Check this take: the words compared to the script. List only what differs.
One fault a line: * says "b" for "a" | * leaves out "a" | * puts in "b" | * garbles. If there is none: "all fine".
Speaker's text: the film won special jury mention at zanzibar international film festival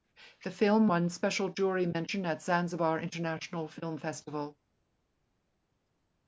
all fine